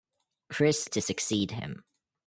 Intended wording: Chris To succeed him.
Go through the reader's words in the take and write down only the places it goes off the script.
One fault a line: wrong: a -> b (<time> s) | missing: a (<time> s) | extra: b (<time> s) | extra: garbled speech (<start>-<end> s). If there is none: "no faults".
no faults